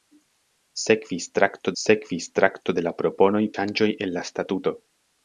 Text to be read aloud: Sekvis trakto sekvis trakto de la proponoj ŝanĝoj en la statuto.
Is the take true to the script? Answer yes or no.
yes